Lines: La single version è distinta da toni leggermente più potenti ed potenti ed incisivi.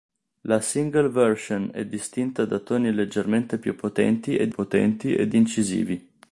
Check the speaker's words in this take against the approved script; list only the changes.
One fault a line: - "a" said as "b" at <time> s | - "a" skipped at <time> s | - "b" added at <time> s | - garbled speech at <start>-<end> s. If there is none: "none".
none